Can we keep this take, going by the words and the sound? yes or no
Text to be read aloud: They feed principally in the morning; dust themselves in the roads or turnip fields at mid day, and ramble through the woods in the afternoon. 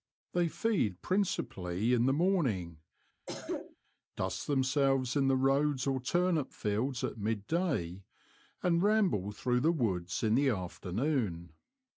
no